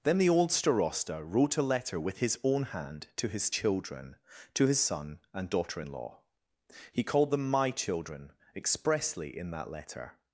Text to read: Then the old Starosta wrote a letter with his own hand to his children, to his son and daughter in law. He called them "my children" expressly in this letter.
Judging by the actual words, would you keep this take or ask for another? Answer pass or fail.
fail